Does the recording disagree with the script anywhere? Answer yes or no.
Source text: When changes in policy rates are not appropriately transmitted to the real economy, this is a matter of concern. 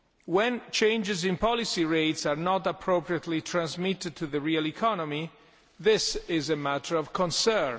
no